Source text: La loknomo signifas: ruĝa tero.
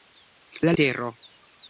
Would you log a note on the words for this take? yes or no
yes